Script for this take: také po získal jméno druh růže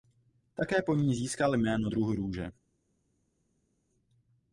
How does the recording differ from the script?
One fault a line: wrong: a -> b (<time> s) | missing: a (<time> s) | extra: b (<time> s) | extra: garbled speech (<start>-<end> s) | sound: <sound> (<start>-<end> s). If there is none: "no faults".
extra: ní (0.9 s)